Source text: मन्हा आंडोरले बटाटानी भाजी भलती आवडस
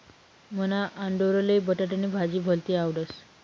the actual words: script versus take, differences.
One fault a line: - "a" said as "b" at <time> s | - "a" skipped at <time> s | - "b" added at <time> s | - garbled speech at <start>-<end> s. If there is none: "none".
none